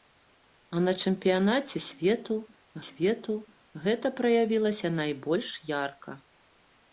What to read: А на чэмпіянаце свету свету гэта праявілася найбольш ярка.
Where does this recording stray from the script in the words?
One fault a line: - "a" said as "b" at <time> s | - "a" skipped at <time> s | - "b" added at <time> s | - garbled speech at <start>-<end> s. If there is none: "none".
none